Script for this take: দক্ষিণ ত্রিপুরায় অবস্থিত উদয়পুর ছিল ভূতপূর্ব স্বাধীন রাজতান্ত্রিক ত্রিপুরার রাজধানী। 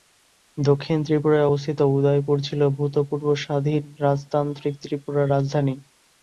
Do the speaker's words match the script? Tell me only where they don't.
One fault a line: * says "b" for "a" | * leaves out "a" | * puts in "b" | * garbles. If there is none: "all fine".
all fine